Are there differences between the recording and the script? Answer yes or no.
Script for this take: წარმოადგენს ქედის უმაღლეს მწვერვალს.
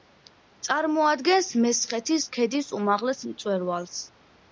yes